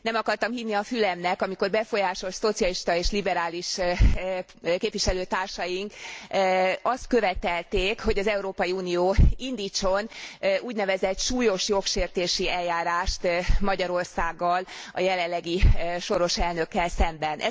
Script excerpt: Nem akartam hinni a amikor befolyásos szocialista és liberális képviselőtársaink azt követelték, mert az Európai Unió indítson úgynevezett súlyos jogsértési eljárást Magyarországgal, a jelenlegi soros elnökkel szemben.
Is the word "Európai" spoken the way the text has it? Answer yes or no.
yes